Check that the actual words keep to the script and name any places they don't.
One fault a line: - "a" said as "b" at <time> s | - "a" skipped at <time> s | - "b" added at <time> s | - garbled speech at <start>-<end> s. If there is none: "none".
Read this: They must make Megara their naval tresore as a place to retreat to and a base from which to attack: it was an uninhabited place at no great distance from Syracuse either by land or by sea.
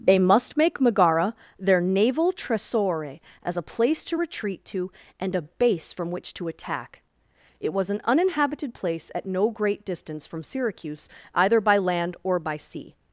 none